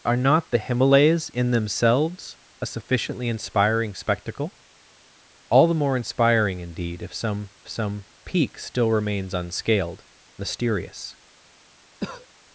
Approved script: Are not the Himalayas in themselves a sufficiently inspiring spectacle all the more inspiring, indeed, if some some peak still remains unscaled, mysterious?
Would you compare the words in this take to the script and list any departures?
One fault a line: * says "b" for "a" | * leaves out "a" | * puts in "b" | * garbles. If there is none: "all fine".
all fine